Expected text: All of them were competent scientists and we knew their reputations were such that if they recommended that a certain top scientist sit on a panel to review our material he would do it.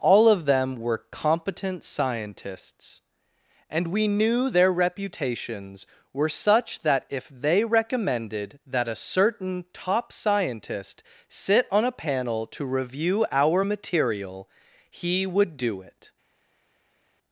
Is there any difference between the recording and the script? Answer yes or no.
no